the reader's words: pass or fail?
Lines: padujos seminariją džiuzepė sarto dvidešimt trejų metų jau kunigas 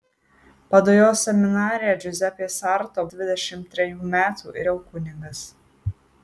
pass